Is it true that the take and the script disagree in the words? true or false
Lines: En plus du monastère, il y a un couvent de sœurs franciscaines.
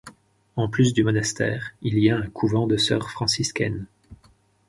false